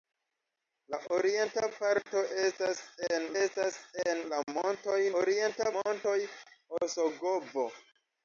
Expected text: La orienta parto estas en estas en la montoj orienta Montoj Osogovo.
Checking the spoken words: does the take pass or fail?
pass